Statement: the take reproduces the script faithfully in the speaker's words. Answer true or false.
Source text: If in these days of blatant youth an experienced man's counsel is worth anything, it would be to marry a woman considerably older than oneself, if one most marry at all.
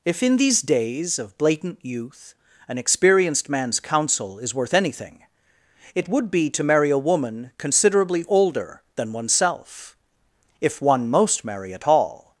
true